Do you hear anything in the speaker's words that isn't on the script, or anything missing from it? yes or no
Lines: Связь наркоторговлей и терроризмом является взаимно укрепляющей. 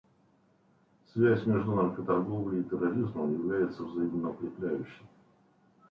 yes